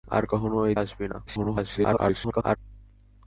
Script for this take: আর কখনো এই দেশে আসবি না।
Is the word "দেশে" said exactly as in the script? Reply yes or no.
no